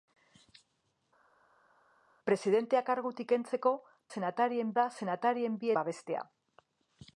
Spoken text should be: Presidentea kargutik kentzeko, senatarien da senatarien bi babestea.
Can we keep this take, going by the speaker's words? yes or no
yes